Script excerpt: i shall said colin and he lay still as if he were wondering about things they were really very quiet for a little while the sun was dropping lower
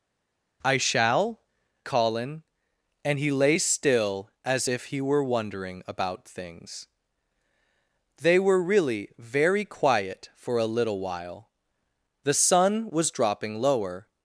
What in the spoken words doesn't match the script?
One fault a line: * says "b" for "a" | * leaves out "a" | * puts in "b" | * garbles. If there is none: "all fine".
* leaves out "said"